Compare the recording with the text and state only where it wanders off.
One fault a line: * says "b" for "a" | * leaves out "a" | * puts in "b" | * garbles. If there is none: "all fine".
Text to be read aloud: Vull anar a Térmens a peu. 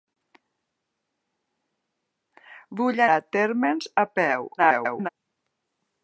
* leaves out "anar"
* garbles